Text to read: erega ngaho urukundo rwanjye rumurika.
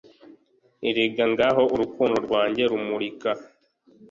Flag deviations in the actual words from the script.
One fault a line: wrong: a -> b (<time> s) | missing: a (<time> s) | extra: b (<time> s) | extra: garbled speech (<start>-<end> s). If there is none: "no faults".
no faults